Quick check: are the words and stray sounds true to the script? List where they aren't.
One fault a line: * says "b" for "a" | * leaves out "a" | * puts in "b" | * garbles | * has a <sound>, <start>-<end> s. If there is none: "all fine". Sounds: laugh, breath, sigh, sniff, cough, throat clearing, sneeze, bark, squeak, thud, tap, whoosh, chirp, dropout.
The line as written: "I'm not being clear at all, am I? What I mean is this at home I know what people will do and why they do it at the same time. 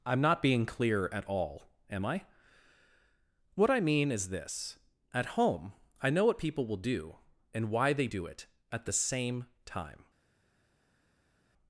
all fine